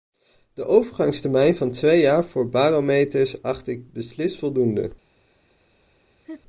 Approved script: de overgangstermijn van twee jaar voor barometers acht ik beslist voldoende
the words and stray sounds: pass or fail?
fail